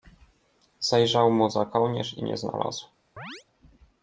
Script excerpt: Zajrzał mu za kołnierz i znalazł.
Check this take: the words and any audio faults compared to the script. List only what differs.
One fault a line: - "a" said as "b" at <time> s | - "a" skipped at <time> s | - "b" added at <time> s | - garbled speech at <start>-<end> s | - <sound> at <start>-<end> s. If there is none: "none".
- "nie" added at 2.2 s
- chirp at 3.2-3.4 s